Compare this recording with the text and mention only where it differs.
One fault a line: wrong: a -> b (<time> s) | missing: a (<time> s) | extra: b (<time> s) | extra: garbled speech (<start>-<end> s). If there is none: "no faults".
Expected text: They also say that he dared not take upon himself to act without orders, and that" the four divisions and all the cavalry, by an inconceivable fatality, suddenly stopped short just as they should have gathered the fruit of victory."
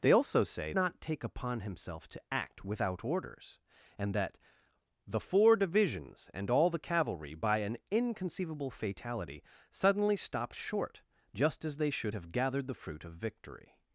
missing: that he dared (0.7 s)